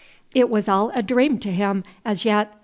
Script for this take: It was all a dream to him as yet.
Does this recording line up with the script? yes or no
yes